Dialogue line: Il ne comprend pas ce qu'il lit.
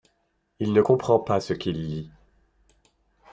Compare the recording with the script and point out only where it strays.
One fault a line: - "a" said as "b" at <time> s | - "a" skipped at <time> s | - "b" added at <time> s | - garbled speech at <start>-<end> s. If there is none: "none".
none